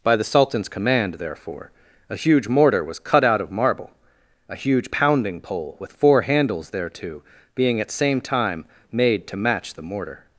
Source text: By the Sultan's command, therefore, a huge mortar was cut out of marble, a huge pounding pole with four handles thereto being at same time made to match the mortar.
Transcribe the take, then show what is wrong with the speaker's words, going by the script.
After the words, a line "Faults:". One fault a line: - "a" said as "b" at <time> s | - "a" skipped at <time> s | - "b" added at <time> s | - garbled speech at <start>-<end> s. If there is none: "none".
By the Sultan's command, therefore, a huge mortar was cut out of marble, a huge pounding pole with four handles thereto being at same time made to match the mortar.
Faults:
none